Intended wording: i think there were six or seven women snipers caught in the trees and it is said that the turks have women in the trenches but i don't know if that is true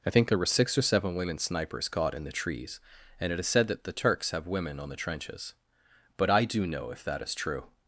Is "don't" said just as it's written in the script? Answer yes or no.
no